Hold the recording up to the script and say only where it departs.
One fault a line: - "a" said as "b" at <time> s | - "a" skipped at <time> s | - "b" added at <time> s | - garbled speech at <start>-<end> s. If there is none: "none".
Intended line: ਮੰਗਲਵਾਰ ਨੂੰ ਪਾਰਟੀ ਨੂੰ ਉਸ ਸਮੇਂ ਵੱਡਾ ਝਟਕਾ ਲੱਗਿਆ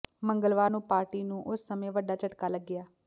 none